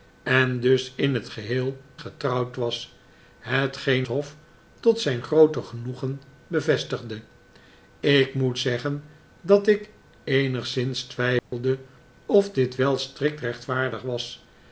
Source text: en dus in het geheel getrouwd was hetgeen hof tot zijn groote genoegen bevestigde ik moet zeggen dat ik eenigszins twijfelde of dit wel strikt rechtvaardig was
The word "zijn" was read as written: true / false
true